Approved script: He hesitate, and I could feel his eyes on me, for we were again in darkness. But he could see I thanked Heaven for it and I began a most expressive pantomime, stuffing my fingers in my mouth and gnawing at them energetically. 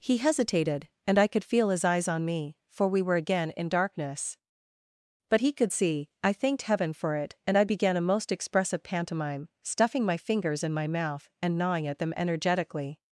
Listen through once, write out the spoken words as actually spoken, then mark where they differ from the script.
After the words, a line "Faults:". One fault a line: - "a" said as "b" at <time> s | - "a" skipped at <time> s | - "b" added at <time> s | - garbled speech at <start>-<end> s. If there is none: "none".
He hesitated, and I could feel his eyes on me, for we were again in darkness. But he could see I thanked Heaven for it and I began a most expressive pantomime, stuffing my fingers in my mouth and gnawing at them energetically.
Faults:
- "hesitate" said as "hesitated" at 0.2 s